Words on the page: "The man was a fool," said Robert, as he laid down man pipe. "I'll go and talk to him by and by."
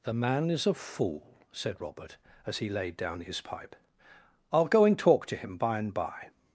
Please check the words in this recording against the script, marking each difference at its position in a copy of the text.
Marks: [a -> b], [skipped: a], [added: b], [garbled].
"The man [was -> is] a fool," said Robert, as he laid down [man -> his] pipe. "I'll go and talk to him by and by."